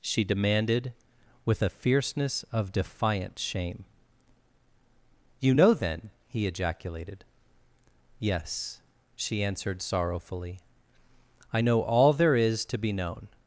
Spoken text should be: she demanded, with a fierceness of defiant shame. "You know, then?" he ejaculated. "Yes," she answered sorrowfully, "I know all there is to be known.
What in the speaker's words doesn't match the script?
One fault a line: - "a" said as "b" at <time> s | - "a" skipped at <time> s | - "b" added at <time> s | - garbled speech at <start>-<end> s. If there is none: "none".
none